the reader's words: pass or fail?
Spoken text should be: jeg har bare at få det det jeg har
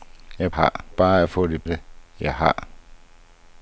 pass